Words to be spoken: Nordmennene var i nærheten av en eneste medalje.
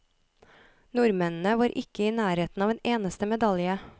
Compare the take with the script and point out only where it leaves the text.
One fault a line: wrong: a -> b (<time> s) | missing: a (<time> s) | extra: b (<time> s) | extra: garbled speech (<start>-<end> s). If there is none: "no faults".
extra: ikke (1.8 s)